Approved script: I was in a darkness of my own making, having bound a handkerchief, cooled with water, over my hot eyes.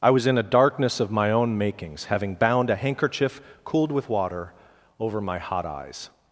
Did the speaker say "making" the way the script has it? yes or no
no